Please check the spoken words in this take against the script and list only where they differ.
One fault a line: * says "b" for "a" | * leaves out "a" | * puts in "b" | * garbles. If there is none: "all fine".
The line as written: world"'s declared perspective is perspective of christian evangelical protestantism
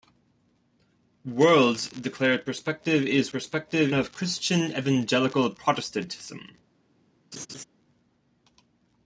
all fine